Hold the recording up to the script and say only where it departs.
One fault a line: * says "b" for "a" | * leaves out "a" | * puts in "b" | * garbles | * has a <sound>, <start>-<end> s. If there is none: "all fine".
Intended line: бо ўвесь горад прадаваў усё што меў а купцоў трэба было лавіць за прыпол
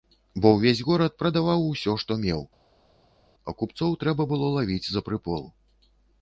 all fine